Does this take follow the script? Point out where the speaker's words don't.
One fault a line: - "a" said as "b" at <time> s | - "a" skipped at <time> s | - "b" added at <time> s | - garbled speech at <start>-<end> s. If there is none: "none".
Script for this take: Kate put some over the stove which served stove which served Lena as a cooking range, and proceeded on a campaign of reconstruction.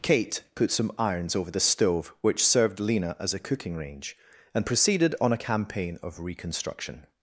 - "irons" added at 1.0 s
- "stove which served" skipped at 2.8 s